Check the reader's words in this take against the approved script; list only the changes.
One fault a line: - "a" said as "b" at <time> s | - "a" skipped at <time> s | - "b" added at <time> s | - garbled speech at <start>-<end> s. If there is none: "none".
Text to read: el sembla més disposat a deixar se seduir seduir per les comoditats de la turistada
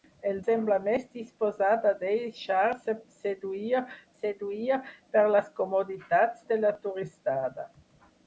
none